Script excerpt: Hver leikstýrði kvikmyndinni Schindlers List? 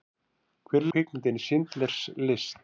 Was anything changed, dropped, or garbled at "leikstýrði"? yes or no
yes